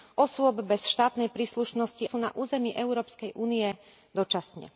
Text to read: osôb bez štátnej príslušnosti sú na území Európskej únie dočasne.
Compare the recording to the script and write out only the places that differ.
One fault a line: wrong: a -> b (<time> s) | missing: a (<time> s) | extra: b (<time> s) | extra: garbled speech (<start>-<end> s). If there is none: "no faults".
no faults